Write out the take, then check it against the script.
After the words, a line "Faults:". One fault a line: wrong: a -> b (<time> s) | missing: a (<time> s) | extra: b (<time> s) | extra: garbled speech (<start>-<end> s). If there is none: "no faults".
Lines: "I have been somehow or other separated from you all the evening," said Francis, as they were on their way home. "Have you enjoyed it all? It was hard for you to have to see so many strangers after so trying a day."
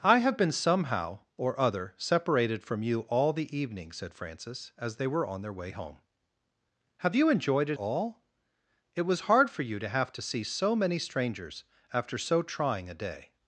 "I have been somehow or other separated from you all the evening," said Francis, as they were on their way home. "Have you enjoyed it all? It was hard for you to have to see so many strangers after so trying a day."
Faults:
no faults